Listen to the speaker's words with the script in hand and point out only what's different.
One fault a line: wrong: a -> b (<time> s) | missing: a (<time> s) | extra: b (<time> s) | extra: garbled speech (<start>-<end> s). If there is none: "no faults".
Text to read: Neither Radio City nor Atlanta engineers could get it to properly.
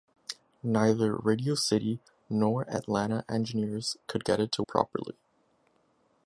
no faults